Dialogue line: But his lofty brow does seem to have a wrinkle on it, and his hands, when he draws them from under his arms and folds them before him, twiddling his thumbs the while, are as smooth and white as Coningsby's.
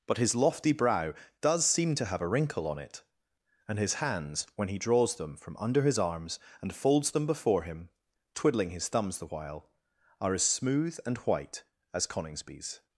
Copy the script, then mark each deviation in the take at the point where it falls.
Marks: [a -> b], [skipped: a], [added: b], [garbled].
But his lofty brow does seem to have a wrinkle on it, and his hands, when he draws them from under his arms and folds them before him, twiddling his thumbs the while, are as smooth and white as Coningsby's.